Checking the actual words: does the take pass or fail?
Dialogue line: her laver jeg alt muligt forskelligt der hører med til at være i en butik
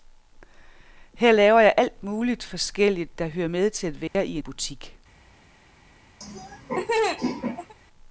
fail